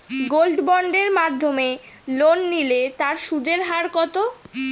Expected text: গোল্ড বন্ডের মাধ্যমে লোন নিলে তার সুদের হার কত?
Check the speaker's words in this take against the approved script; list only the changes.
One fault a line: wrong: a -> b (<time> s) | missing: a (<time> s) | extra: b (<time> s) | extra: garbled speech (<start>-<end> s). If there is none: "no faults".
no faults